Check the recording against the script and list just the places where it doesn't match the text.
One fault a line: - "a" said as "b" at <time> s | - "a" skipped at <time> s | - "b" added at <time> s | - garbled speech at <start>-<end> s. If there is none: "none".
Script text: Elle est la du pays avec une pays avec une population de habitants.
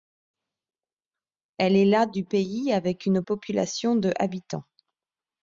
- "pays avec une" skipped at 3.2 s